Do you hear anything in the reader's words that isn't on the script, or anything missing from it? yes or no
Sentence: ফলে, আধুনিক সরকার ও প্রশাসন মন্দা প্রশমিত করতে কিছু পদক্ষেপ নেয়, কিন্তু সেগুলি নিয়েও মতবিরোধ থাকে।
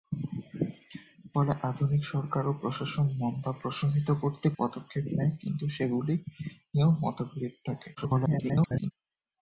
yes